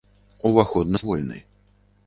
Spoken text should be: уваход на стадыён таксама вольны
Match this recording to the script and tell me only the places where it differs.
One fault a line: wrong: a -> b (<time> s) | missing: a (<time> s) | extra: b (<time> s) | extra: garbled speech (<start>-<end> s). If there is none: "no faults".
missing: стадыён таксама (1.0 s)